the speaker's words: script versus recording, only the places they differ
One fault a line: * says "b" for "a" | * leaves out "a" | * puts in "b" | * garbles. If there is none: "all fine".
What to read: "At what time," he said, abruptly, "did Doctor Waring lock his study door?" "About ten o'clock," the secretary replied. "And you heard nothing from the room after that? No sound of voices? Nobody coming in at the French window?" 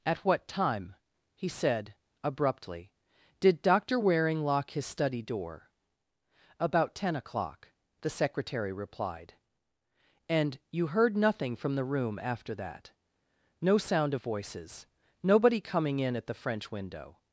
all fine